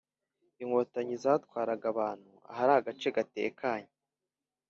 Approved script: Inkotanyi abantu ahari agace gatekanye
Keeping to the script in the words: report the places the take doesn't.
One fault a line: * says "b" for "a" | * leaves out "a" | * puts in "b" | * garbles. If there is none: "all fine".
* puts in "zatwaraga"